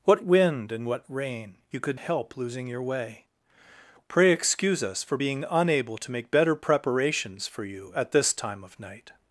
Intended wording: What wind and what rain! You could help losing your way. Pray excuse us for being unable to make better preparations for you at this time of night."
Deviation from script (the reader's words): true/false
false